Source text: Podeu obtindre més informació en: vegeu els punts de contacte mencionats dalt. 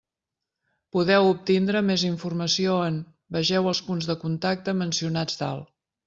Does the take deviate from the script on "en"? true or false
false